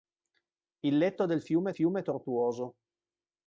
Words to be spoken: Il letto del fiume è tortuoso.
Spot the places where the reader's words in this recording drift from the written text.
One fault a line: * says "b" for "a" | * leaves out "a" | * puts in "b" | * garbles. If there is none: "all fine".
* puts in "fiume"